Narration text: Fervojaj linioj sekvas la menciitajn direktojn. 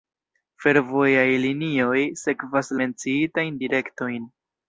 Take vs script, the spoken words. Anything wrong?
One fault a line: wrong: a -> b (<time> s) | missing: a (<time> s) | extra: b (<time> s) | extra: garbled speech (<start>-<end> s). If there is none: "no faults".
missing: la (2.8 s)